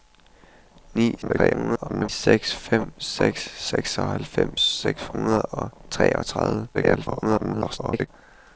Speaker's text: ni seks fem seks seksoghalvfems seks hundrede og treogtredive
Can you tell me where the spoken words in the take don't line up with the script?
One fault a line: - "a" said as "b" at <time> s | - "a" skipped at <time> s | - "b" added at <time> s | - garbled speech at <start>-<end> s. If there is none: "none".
- garbled speech at 1.2-2.1 s
- garbled speech at 6.7-8.1 s